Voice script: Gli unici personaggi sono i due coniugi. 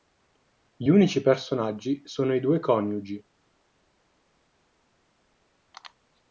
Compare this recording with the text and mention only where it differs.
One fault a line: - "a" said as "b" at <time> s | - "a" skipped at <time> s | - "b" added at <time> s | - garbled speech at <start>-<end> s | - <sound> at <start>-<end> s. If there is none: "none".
none